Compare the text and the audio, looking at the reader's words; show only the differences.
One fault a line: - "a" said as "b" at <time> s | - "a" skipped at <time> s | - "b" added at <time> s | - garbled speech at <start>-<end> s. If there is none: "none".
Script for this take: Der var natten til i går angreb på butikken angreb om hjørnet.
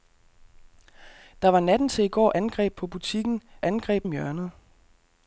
none